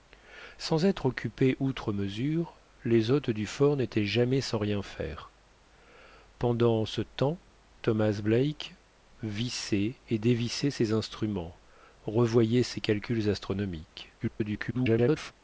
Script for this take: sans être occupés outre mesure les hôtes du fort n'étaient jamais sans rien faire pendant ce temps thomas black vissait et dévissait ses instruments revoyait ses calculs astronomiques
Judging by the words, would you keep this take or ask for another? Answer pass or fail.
fail